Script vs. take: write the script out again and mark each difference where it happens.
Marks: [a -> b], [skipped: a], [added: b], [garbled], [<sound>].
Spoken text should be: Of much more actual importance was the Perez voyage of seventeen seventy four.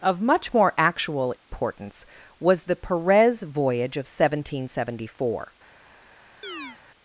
Of much more actual importance [dropout] was the Perez voyage of seventeen seventy four. [chirp]